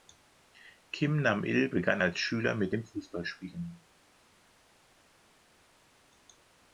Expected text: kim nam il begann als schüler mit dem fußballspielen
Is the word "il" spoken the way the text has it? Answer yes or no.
yes